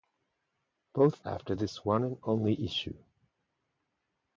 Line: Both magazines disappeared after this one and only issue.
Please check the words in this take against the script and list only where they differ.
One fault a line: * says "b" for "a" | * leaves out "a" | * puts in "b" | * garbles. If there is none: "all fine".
* leaves out "magazines disappeared"